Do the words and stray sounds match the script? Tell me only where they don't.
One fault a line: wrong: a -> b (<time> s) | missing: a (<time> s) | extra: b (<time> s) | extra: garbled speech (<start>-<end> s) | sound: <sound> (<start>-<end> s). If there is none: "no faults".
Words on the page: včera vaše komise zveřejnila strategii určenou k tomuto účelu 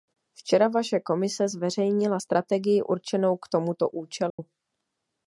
sound: dropout (4.3-4.4 s)